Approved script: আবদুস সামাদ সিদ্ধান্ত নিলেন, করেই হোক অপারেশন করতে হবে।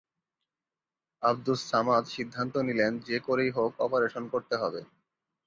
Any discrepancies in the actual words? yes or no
yes